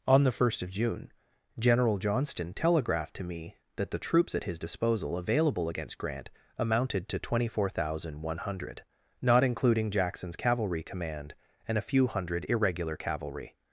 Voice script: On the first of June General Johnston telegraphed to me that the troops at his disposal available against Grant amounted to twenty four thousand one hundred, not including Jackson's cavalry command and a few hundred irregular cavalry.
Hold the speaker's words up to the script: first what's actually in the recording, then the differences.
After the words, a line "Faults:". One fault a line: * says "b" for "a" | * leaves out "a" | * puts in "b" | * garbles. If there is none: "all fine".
On the first of June General Johnston telegraphed to me that the troops at his disposal available against Grant amounted to twenty four thousand one hundred, not including Jackson's cavalry command and a few hundred irregular cavalry.
Faults:
all fine